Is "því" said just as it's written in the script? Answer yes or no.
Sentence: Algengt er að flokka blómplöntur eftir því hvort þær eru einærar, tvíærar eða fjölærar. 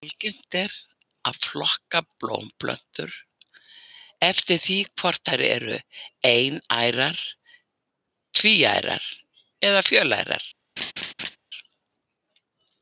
yes